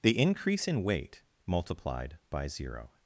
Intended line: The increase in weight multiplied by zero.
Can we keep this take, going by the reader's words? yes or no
yes